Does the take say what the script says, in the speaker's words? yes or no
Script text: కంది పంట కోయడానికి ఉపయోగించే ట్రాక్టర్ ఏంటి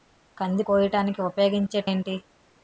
no